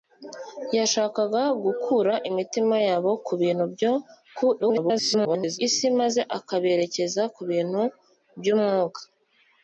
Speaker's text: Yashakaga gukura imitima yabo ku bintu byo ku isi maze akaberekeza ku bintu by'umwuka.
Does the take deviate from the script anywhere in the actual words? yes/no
yes